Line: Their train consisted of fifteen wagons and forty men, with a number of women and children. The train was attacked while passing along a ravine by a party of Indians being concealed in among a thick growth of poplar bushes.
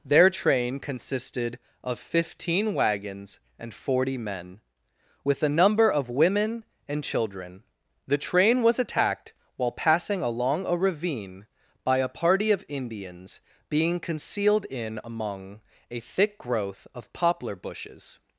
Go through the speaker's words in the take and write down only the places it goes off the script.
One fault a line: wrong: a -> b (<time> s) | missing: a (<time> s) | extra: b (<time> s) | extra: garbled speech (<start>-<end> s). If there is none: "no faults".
no faults